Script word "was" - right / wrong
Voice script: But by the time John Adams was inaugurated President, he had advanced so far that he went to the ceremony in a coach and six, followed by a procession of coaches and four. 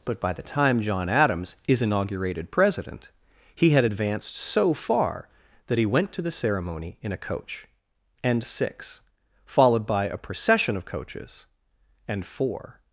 wrong